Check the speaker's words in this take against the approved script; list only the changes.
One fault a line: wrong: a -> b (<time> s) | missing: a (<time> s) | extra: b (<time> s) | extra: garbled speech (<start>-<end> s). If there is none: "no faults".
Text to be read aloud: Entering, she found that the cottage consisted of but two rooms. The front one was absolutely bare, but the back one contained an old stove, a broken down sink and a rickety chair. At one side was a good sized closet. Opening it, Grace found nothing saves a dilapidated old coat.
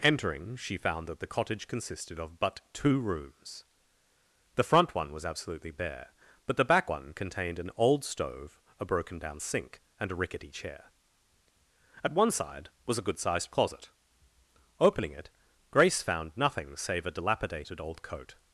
wrong: saves -> save (16.7 s)